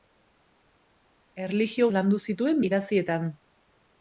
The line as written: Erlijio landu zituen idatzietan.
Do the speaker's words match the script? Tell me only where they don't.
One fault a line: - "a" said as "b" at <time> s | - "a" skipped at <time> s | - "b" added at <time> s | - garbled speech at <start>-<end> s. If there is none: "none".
none